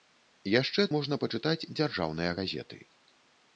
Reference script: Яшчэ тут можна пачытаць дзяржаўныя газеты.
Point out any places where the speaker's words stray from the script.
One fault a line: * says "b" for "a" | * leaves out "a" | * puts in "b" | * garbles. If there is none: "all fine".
* leaves out "тут"